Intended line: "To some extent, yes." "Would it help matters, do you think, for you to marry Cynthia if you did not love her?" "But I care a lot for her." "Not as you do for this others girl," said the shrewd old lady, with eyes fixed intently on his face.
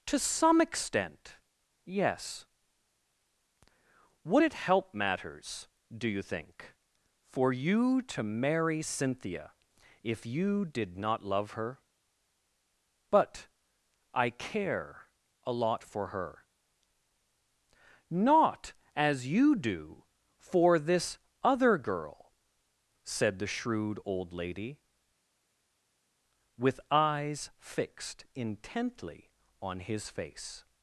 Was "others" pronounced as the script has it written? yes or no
no